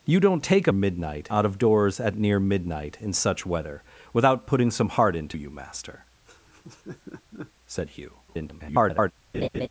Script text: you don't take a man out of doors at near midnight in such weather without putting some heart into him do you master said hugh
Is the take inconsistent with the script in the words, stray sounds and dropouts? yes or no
yes